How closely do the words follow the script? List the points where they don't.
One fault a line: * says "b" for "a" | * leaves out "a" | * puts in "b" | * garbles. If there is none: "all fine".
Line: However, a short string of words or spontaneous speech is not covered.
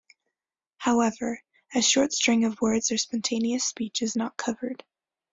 all fine